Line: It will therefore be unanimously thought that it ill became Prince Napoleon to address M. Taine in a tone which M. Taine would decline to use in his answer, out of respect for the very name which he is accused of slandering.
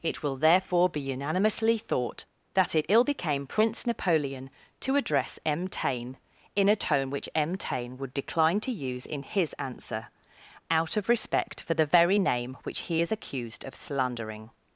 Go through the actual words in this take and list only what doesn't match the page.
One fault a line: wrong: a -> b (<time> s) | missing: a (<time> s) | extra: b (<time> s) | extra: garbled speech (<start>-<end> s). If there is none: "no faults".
no faults